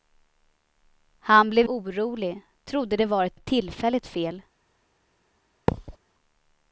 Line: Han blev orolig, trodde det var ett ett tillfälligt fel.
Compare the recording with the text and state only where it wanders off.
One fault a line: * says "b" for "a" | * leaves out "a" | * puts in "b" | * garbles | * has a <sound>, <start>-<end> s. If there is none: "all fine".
* has a thud, 5.7-6.0 s